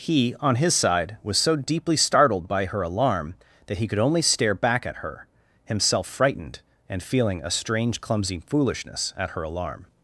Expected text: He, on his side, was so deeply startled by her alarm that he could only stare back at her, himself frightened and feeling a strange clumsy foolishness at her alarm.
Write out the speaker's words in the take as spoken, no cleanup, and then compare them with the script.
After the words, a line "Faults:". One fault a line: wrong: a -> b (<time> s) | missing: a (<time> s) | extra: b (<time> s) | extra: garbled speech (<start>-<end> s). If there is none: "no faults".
He, on his side, was so deeply startled by her alarm that he could only stare back at her, himself frightened and feeling a strange clumsy foolishness at her alarm.
Faults:
no faults